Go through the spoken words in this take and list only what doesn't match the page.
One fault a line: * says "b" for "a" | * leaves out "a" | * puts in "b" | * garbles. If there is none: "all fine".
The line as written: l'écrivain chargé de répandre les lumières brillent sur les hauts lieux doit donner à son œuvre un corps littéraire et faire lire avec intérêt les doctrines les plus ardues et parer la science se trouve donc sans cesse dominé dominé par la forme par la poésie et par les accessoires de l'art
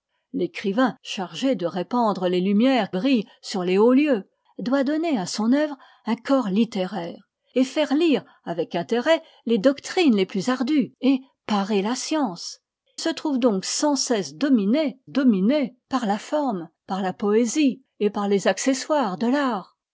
all fine